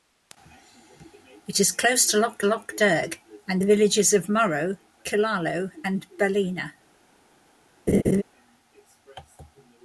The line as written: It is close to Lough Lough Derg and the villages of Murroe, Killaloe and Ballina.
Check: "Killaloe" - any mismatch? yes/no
no